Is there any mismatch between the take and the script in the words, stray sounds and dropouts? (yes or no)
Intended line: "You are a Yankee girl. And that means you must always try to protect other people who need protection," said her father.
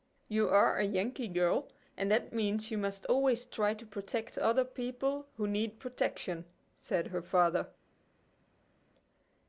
no